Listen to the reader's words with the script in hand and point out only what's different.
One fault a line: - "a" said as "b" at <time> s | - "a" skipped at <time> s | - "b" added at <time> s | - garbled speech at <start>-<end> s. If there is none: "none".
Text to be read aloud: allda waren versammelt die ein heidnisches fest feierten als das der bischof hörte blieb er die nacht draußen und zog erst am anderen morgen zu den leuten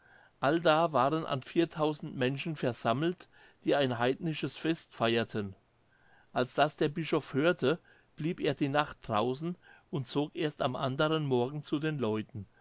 - "an viertausend menschen" added at 1.3 s